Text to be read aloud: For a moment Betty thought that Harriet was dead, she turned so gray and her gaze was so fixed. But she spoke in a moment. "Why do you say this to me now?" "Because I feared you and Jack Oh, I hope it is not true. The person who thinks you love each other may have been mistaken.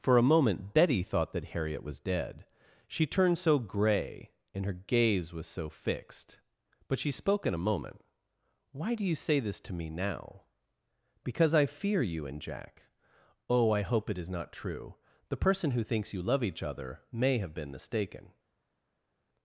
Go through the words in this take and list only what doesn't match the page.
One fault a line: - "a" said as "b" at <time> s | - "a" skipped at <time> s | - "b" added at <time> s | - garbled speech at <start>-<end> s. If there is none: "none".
- "feared" said as "fear" at 11.7 s